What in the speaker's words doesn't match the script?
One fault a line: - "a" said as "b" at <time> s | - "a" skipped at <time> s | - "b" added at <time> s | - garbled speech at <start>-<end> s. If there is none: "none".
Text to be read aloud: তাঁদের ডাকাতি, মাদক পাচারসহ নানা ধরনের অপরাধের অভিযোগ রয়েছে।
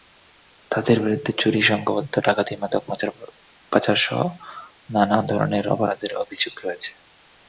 - "বিরুদ্ধে চুরি সংঘবদ্ধ" added at 1.0 s